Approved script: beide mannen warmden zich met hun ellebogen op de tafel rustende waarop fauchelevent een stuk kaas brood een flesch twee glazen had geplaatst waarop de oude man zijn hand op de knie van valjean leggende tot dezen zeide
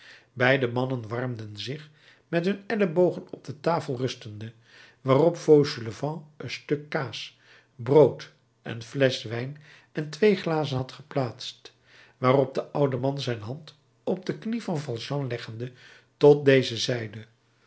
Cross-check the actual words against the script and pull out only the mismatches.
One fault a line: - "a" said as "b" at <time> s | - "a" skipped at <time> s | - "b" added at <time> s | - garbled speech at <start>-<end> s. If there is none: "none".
- "wijn en" added at 9.2 s